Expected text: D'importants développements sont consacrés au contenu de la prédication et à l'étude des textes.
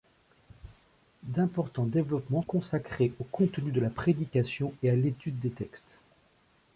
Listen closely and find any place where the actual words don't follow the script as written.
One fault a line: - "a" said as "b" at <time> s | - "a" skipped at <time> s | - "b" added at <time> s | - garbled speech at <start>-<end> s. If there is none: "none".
- "sont" skipped at 2.4 s